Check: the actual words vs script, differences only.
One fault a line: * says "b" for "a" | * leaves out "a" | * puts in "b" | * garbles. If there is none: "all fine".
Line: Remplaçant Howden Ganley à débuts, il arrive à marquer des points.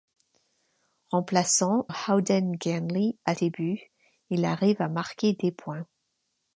all fine